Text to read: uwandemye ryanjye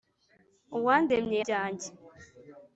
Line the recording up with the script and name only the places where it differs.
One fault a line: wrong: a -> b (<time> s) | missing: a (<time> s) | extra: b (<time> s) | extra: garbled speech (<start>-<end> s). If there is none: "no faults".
no faults